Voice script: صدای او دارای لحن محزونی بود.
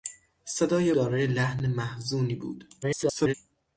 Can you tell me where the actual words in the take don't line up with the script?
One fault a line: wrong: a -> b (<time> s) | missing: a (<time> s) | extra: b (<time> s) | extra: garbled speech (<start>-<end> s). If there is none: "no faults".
missing: او (0.9 s)
extra: garbled speech (2.8-3.3 s)